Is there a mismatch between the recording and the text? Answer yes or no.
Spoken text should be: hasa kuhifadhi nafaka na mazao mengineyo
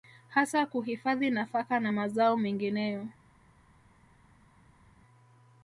no